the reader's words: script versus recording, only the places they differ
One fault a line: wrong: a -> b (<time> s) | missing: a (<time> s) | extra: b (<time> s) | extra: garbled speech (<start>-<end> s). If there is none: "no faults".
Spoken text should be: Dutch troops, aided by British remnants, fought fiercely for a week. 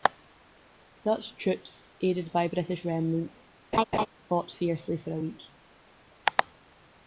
no faults